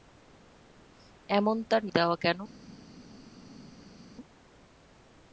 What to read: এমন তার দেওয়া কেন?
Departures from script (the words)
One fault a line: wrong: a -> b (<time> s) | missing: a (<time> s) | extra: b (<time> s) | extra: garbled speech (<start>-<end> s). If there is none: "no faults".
no faults